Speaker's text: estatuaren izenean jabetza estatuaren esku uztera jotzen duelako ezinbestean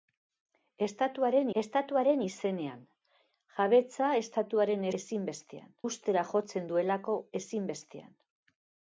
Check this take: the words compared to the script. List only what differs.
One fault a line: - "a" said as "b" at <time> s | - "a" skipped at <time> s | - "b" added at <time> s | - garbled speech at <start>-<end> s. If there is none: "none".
- "estatuaren" added at 1.6 s
- "esku" said as "ezinbestean" at 5.0 s